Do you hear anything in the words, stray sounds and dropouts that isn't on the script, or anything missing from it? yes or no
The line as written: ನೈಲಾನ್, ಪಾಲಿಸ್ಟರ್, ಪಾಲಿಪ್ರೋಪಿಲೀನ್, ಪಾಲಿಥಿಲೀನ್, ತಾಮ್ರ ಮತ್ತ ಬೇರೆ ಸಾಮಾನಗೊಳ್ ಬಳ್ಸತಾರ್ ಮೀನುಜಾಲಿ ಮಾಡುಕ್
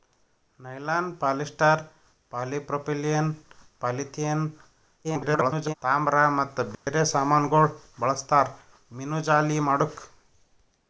yes